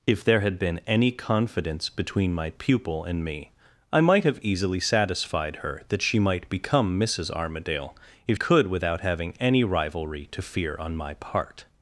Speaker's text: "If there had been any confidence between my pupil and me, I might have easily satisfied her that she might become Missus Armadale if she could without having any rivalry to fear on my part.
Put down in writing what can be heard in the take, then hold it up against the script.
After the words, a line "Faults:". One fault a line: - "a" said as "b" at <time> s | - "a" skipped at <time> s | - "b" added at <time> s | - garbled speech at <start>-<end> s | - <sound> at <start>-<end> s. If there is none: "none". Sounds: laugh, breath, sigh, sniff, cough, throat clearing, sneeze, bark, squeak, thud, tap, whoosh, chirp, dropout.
"If there had been any confidence between my pupil and me, I might have easily satisfied her that she might become Missus Armadale if could without having any rivalry to fear on my part.
Faults:
- "she" skipped at 8.4 s